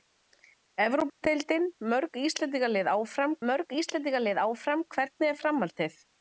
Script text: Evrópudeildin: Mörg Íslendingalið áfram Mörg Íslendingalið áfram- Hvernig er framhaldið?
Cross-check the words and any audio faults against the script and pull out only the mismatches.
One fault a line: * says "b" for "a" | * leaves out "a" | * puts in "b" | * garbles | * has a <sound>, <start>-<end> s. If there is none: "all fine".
* has a dropout, 1.1-1.2 s